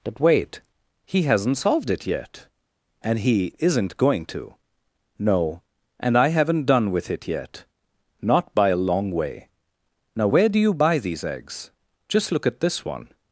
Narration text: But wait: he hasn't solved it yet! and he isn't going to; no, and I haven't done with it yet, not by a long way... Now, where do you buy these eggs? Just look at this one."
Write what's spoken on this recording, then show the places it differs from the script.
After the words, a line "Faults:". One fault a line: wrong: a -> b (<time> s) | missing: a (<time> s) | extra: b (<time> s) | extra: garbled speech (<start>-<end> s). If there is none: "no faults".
But wait: he hasn't solved it yet! and he isn't going to; no, and I haven't done with it yet, not by a long way... Now, where do you buy these eggs? Just look at this one."
Faults:
no faults